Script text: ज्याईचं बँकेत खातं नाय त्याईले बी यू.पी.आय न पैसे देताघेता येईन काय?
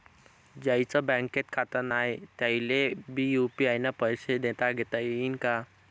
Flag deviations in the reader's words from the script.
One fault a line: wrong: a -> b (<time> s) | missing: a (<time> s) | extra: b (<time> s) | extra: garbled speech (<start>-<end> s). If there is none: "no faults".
no faults